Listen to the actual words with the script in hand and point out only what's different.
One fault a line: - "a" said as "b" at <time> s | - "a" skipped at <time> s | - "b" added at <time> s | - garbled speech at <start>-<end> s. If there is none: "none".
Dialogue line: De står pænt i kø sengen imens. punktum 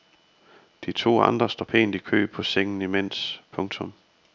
- "to andre" added at 0.9 s
- "på" added at 2.3 s